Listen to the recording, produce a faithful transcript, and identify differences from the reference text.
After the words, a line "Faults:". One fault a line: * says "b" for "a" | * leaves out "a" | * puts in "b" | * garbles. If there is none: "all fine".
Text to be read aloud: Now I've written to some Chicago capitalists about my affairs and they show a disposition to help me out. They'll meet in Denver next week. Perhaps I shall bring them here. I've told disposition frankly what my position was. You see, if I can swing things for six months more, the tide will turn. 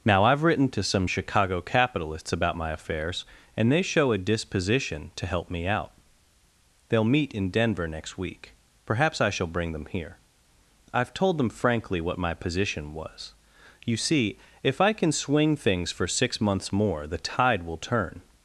Now I've written to some Chicago capitalists about my affairs and they show a disposition to help me out. They'll meet in Denver next week. Perhaps I shall bring them here. I've told them frankly what my position was. You see, if I can swing things for six months more, the tide will turn.
Faults:
* says "them" for "disposition"